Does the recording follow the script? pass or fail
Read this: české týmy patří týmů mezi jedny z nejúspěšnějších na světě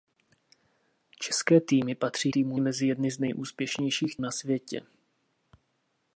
pass